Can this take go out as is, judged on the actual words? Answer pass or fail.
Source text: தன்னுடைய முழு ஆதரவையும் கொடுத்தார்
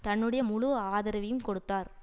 pass